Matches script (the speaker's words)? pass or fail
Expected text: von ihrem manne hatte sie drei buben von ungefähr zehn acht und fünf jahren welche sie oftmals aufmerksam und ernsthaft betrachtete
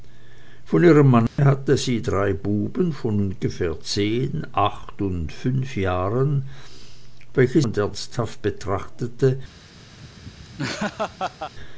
fail